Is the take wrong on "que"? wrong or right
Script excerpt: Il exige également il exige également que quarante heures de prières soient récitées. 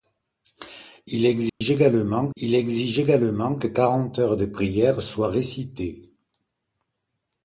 right